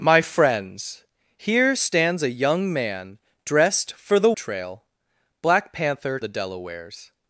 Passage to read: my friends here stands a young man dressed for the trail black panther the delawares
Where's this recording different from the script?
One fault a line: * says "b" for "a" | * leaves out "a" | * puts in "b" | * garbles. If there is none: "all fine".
all fine